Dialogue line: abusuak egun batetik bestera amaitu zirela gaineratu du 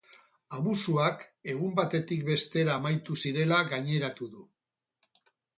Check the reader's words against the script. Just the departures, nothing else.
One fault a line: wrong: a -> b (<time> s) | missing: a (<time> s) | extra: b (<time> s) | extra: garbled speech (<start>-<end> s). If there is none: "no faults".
no faults